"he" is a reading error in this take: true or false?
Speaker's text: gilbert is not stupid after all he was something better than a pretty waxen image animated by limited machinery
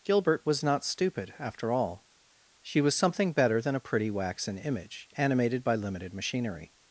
true